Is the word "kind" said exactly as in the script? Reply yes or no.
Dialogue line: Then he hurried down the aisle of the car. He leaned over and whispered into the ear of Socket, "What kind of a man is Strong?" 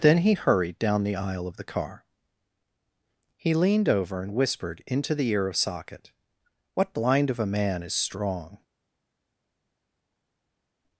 no